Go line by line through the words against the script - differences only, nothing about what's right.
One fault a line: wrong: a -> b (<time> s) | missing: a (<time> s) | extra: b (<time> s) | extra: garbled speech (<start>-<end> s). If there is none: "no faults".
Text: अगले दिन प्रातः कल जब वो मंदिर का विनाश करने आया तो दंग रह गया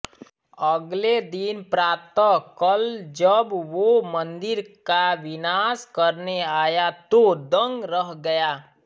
no faults